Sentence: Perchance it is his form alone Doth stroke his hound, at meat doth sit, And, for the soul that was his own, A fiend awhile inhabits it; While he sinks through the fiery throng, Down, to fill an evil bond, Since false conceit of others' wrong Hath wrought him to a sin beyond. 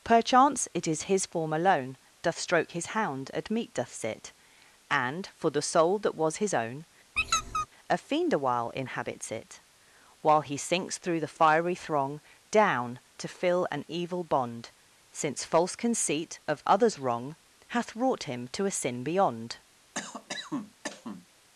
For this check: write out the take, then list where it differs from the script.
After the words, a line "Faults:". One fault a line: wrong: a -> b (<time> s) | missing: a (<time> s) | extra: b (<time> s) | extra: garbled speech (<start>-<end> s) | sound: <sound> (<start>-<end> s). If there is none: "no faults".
Perchance it is his form alone Doth stroke his hound, at meat doth sit, And, for the soul that was his own, A fiend awhile inhabits it; While he sinks through the fiery throng, Down, to fill an evil bond, Since false conceit of others' wrong Hath wrought him to a sin beyond.
Faults:
sound: squeak (7.2-7.7 s)
sound: cough (19.9-21.3 s)